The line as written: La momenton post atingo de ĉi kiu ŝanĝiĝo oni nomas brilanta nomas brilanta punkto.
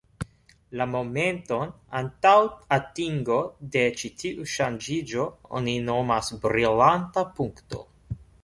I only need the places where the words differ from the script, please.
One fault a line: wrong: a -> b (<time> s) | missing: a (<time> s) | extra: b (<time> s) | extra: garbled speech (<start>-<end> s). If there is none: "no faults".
wrong: post -> antaŭ (2.0 s)
wrong: kiu -> tiu (4.2 s)
missing: nomas brilanta (7.3 s)